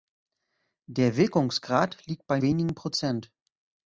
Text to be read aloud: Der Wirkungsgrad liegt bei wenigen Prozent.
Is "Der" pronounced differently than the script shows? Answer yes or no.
no